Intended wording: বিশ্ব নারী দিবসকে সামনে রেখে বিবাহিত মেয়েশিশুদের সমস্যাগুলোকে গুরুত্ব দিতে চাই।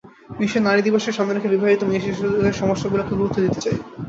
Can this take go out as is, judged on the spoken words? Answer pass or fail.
pass